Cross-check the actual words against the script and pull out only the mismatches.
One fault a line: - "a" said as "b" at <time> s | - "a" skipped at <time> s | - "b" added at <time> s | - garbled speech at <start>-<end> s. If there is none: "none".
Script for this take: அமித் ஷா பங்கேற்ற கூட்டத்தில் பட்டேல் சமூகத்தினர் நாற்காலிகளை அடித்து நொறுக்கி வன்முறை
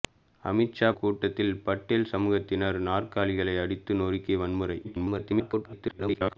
- "பங்கேற்ற" skipped at 0.9 s
- garbled speech at 4.8-6.4 s